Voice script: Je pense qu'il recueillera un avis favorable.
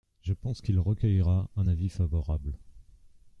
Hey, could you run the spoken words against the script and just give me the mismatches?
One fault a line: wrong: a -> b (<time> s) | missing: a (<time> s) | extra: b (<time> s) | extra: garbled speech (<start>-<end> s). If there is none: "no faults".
no faults